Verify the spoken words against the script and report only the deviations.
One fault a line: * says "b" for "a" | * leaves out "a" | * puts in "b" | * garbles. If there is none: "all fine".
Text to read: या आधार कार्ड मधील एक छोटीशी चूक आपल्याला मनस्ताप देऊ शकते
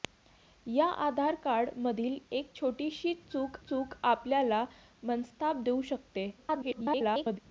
* puts in "चूक"
* garbles